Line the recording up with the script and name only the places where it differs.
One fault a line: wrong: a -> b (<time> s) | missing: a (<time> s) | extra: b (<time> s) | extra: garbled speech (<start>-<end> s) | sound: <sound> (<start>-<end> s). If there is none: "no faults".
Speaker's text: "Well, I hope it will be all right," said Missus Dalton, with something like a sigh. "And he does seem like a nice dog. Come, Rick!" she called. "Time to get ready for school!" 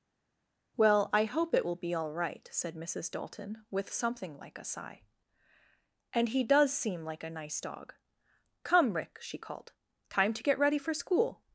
no faults